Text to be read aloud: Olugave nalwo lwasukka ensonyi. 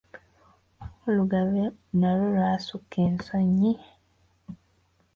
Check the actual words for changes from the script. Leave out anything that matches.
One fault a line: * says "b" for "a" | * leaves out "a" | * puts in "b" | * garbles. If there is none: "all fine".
all fine